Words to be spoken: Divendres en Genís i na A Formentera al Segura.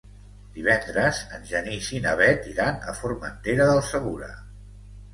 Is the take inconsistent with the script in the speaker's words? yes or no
yes